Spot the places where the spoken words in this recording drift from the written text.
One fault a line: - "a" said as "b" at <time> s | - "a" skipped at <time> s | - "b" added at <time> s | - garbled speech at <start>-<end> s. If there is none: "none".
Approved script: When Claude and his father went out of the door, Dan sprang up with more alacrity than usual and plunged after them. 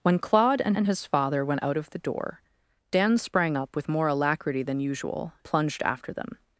- "and" added at 0.7 s
- "and" skipped at 5.3 s